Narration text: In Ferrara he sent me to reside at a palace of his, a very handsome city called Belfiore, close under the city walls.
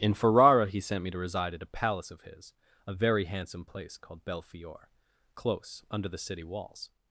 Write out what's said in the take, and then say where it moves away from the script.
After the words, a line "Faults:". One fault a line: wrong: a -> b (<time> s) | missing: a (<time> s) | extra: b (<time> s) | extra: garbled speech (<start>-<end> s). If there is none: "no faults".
In Ferrara he sent me to reside at a palace of his, a very handsome place called Belfiore, close under the city walls.
Faults:
wrong: city -> place (3.6 s)